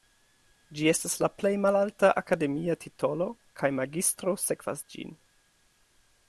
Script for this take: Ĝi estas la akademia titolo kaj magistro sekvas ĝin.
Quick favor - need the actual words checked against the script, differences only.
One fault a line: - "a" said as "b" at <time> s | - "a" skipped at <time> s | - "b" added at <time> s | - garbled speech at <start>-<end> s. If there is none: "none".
- "plej malalta" added at 1.4 s